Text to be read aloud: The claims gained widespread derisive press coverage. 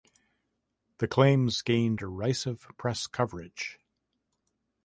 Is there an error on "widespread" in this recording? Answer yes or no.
yes